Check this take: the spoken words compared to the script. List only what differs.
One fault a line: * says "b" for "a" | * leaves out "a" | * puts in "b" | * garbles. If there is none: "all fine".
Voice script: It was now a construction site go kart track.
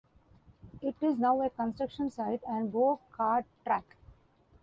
* says "is" for "was"
* puts in "and"